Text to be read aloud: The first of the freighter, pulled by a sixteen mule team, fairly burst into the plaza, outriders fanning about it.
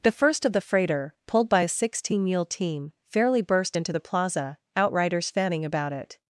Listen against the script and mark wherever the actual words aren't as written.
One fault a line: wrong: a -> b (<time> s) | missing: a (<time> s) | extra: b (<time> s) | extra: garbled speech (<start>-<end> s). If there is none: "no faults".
no faults